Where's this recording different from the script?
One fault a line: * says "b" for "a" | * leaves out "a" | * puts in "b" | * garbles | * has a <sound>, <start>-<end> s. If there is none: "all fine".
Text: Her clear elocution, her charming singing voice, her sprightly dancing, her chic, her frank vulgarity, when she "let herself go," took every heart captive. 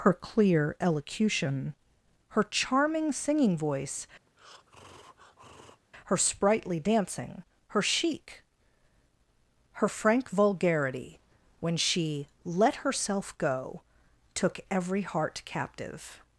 * has a breath, 4.3-5.8 s